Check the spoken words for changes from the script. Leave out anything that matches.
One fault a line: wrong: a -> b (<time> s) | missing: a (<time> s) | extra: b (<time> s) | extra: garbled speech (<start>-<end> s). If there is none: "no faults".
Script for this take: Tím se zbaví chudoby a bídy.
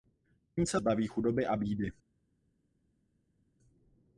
no faults